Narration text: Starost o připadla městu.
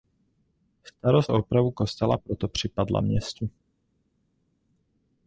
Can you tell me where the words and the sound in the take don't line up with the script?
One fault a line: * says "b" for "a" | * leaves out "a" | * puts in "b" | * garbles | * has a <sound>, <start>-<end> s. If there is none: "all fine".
* puts in "opravu kostela proto"